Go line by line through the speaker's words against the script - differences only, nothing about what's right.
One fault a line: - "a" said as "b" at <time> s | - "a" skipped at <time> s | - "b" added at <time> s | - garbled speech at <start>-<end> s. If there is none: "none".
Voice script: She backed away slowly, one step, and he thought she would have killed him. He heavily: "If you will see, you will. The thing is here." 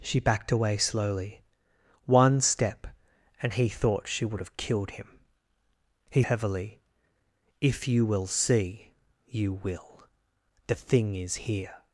none